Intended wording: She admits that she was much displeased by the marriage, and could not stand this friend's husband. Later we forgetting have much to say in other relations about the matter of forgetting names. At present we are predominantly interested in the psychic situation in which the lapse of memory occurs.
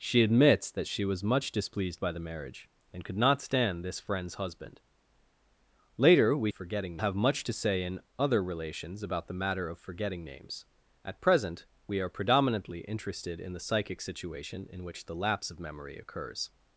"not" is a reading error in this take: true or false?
false